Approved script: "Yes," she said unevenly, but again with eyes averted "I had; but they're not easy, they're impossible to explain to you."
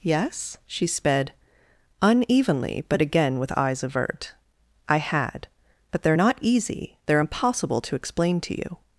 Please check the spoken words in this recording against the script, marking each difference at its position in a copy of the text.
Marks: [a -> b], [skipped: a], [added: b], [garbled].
"Yes," she [said -> sped] unevenly, but again with eyes [averted -> avert] "I had; but they're not easy, they're impossible to explain to you."